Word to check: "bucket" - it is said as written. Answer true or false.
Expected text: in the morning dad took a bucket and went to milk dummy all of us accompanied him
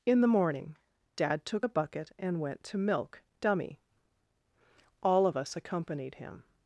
true